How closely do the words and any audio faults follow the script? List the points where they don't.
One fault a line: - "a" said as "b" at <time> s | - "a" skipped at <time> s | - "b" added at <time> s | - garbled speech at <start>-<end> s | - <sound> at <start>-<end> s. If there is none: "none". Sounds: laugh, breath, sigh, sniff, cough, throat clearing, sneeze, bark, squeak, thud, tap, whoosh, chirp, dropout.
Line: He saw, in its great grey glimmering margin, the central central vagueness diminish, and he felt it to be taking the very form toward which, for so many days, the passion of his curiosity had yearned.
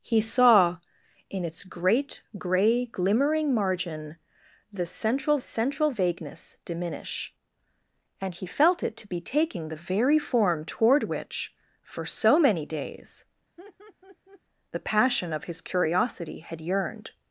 - laugh at 13.6-14.4 s